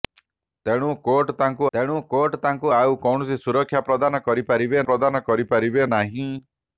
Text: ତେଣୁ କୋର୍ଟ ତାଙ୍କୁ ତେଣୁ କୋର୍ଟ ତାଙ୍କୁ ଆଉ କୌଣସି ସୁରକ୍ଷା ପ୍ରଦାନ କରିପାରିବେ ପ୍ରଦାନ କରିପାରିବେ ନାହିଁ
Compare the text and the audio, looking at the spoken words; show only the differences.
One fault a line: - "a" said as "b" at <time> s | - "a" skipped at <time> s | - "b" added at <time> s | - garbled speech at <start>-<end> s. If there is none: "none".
none